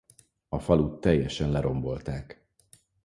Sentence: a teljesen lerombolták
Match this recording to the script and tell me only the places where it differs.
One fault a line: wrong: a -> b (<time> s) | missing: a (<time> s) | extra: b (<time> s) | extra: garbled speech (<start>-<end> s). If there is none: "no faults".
extra: falut (0.6 s)